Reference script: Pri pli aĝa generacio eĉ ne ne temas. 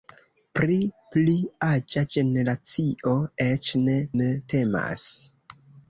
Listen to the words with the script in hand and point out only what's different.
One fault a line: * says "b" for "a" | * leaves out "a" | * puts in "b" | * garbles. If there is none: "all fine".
all fine